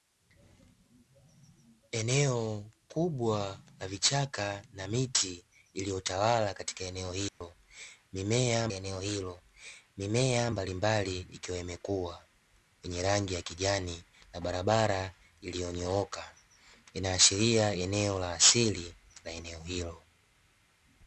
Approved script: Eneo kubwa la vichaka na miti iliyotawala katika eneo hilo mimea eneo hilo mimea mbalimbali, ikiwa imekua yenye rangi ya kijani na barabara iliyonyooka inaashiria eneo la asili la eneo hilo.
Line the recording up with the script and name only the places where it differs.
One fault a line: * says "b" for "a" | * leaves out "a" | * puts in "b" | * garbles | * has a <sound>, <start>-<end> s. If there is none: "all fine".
* has a dropout, 7.3-7.4 s